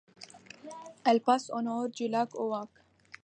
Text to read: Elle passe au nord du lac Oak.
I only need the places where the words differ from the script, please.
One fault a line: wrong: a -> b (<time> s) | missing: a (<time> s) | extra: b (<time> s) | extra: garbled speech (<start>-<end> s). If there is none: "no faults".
no faults